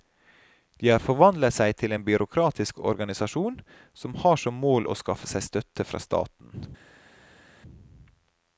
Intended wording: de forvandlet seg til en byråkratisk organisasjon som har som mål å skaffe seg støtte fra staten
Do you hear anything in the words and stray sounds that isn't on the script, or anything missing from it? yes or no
yes